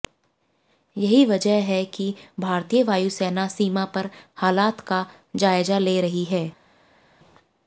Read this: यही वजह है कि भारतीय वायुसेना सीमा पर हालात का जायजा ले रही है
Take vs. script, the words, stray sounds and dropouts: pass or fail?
pass